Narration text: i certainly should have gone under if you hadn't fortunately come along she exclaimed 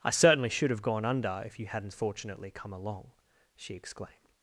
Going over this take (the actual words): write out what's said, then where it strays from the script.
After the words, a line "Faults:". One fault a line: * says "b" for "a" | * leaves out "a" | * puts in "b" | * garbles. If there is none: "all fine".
i certainly should have gone under if you hadn't fortunately come along she exclaimed
Faults:
all fine